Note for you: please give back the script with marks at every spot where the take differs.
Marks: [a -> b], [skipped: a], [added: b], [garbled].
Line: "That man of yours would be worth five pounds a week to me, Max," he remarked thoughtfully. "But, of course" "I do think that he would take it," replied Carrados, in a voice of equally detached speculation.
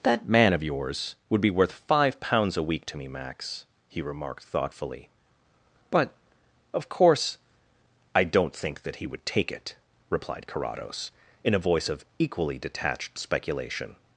"That man of yours would be worth five pounds a week to me, Max," he remarked thoughtfully. "But, of course" "I [do -> don't] think that he would take it," replied Carrados, in a voice of equally detached speculation.